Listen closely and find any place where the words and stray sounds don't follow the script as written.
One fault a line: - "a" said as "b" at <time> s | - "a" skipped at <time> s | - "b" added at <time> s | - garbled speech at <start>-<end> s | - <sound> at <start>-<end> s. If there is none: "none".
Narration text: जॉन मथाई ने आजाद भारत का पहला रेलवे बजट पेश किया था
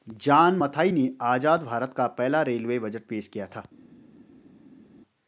none